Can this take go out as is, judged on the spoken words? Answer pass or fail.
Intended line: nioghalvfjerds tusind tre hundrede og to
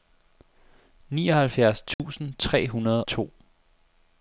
fail